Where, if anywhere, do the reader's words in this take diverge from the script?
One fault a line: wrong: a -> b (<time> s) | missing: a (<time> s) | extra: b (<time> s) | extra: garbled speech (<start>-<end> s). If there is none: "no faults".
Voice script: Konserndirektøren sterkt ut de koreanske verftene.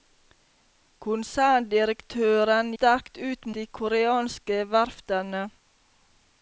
no faults